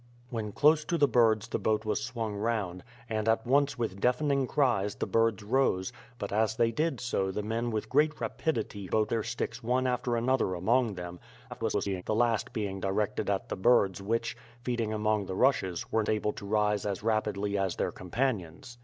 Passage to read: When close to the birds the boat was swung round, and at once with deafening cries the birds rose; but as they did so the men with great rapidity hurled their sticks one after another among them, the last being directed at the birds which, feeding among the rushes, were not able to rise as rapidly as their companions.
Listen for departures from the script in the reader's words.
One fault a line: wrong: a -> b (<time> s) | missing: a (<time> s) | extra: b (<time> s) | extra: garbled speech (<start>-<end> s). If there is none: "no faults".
wrong: hurled -> boat (8.9 s)
extra: garbled speech (11.5-12.0 s)
missing: not (16.0 s)